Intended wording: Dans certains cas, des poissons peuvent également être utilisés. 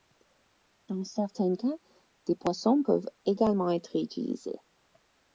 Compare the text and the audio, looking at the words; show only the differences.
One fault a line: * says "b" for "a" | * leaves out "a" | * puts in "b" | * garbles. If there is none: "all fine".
all fine